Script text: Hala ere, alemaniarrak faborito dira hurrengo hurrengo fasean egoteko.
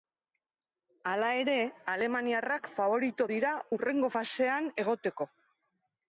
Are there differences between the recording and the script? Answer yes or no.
yes